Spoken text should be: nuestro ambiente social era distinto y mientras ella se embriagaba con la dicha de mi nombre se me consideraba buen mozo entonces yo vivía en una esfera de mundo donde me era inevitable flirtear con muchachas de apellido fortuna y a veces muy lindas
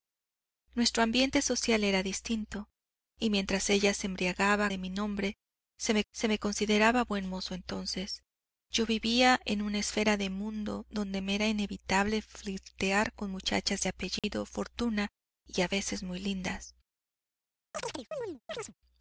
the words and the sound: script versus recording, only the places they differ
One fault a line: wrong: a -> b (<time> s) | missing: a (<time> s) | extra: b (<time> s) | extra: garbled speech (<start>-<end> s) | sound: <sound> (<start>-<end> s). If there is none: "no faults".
missing: con la dicha (4.7 s)
extra: se me (6.1 s)
sound: dropout (14.2-14.2 s)
sound: chirp (17.7-18.7 s)